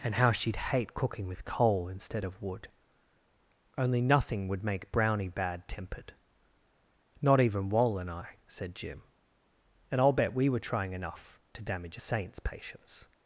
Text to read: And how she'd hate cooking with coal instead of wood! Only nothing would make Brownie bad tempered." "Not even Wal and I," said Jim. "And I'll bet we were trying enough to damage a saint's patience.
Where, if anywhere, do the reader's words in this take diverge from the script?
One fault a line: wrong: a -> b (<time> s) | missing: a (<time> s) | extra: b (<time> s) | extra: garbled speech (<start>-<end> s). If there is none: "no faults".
no faults